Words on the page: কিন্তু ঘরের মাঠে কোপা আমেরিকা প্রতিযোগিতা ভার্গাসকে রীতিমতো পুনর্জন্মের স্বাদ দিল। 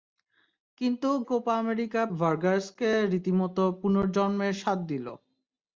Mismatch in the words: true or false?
true